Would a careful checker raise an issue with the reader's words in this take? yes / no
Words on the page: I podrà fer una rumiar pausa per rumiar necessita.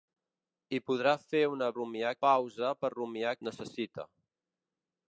no